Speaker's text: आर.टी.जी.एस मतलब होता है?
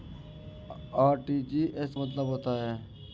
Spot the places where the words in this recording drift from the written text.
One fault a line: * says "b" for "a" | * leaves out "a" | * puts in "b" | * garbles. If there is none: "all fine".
all fine